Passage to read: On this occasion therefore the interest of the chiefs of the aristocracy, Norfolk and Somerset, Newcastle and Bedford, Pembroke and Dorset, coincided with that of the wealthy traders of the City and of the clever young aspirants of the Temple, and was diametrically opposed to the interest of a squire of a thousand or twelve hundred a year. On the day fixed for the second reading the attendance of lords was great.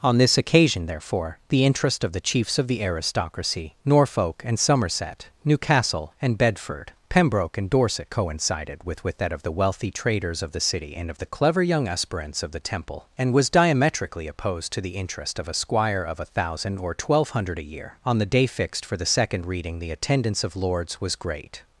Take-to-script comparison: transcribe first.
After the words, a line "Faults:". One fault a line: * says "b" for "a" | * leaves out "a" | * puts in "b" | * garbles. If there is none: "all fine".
On this occasion therefore the interest of the chiefs of the aristocracy, Norfolk and Somerset, Newcastle and Bedford, Pembroke and Dorset, coincided with with that of the wealthy traders of the City and of the clever young aspirants of the Temple, and was diametrically opposed to the interest of a squire of a thousand or twelve hundred a year. On the day fixed for the second reading the attendance of lords was great.
Faults:
* puts in "with"